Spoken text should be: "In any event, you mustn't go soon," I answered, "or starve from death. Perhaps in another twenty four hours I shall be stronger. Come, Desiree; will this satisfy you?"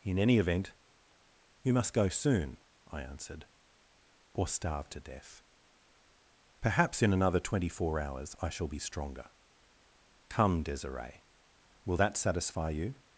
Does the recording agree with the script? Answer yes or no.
no